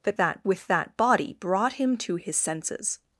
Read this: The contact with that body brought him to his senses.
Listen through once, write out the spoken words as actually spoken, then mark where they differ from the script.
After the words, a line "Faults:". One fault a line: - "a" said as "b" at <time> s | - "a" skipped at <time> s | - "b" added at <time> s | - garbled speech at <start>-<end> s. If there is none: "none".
The that with that body brought him to his senses.
Faults:
- "contact" said as "that" at 0.2 s